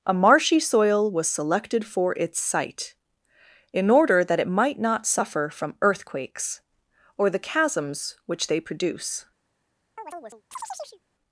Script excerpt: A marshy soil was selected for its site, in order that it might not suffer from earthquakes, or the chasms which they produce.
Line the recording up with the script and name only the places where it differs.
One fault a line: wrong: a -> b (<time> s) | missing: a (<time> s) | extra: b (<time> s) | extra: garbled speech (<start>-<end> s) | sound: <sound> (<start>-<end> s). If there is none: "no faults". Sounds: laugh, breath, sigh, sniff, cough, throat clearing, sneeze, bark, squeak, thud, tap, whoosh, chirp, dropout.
sound: chirp (10.0-11.0 s)